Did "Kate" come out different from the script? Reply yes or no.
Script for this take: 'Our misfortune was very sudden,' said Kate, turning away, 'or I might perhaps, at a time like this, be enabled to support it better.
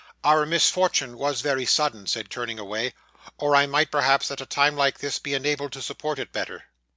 yes